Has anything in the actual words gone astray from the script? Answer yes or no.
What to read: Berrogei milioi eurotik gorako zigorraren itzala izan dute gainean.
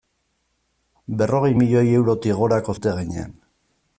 yes